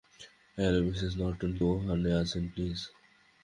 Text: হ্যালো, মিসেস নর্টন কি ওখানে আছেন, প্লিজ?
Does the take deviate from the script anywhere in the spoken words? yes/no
yes